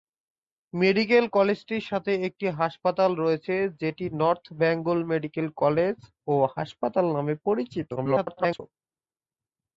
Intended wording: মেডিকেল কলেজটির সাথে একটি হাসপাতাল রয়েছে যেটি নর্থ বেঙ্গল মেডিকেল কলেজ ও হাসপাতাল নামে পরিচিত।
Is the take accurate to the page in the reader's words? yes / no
no